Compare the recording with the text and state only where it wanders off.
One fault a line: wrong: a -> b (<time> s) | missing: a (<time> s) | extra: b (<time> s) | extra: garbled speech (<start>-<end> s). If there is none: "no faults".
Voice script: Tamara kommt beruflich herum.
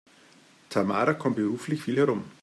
extra: viel (1.8 s)